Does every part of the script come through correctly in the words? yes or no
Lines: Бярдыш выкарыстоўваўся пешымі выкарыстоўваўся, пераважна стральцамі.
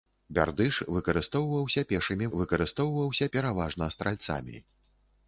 yes